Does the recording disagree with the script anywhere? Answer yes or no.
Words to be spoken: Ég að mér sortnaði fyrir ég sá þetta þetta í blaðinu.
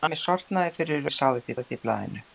no